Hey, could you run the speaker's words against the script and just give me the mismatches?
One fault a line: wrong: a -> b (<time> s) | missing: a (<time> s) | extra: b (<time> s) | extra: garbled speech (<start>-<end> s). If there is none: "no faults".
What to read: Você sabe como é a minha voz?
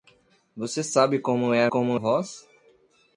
wrong: minha -> como (1.7 s)